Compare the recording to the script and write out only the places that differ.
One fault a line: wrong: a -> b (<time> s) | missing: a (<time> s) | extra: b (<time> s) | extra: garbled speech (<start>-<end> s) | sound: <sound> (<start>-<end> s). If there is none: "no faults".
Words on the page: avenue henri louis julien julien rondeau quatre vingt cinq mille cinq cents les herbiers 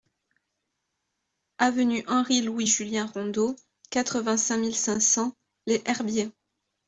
missing: julien (3.1 s)